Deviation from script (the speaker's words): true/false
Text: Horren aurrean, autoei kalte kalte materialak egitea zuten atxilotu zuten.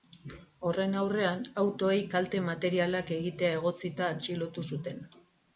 true